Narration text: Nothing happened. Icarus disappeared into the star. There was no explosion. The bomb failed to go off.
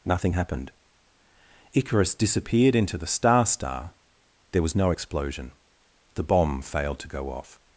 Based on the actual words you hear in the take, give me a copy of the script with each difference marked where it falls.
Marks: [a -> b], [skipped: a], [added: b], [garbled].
Nothing happened. Icarus disappeared into the star. [added: star] There was no explosion. The bomb failed to go off.